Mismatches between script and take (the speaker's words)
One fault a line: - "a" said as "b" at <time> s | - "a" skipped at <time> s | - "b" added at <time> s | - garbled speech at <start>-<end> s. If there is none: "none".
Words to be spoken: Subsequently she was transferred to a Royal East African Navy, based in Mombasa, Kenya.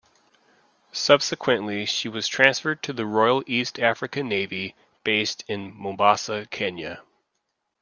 - "a" said as "the" at 2.9 s